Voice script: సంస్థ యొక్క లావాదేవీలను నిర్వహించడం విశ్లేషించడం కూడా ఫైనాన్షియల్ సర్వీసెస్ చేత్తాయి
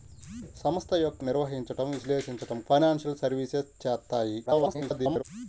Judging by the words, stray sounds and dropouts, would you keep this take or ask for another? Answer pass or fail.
fail